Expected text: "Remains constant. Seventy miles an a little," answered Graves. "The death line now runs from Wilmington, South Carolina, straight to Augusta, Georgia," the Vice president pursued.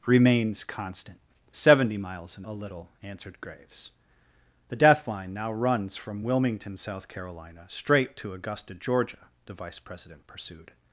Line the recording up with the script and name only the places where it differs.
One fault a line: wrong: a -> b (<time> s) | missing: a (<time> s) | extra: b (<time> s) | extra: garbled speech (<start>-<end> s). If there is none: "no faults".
no faults